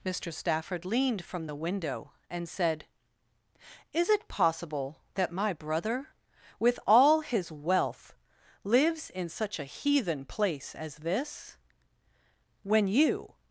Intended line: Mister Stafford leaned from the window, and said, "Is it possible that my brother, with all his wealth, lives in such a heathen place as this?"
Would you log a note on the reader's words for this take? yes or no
yes